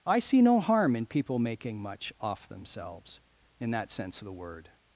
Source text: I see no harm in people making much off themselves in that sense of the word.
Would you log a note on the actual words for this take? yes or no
no